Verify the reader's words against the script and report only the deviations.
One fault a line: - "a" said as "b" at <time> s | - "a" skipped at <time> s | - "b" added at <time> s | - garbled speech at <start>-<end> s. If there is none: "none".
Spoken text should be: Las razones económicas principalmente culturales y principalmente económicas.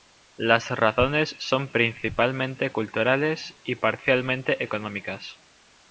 - "económicas" said as "son" at 1.4 s
- "principalmente" said as "parcialmente" at 3.7 s